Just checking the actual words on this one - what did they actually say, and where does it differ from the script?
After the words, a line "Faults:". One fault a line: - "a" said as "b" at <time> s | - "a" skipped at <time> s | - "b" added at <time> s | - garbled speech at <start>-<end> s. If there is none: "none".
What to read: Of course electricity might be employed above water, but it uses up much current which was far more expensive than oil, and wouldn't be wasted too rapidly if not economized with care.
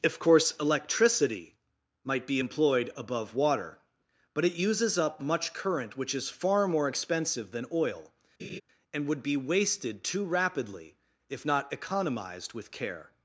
Of course electricity might be employed above water, but it uses up much current which is far more expensive than oil, and would be wasted too rapidly if not economized with care.
Faults:
- "was" said as "is" at 6.1 s
- "wouldn't" said as "would" at 9.1 s